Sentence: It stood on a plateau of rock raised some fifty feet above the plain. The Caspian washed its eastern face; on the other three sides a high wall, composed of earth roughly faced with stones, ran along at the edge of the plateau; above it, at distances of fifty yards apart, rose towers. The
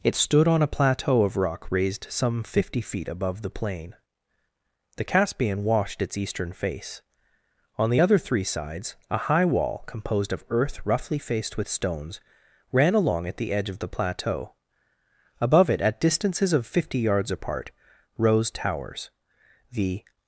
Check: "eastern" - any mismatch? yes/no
no